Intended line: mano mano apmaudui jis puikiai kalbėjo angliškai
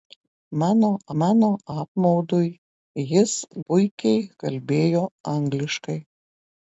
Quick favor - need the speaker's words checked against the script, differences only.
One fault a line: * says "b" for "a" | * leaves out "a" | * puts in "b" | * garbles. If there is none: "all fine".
all fine